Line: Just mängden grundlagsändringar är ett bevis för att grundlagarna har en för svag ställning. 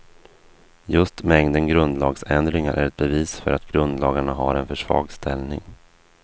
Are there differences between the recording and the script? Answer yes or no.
no